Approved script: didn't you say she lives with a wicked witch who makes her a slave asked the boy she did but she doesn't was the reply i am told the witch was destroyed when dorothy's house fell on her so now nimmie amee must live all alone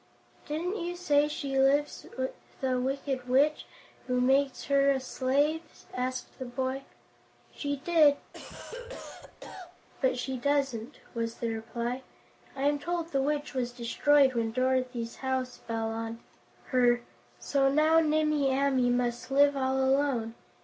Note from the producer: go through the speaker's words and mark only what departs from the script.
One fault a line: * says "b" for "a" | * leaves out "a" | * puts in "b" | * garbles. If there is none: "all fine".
all fine